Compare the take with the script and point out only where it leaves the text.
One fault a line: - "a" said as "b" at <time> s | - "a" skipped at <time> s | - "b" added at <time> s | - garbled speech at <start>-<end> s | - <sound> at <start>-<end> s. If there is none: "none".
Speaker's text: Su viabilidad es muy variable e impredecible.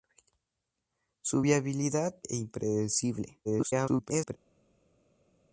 - "es muy variable" skipped at 2.1 s
- garbled speech at 3.4-4.4 s